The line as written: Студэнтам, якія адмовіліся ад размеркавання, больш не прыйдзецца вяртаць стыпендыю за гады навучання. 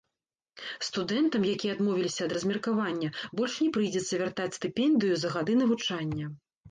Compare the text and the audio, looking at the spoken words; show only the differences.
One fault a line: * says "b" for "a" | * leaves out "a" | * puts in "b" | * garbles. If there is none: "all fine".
all fine